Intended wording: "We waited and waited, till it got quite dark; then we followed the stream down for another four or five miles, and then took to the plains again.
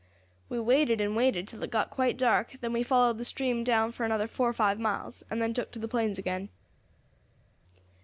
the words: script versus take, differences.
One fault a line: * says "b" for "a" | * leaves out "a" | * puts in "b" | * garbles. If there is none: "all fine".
all fine